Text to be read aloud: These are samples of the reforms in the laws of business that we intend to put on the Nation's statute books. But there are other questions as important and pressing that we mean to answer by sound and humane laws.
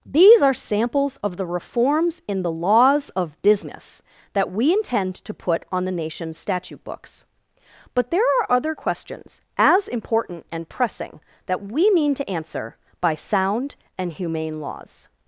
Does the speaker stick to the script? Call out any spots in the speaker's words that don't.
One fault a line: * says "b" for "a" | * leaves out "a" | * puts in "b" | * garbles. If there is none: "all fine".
all fine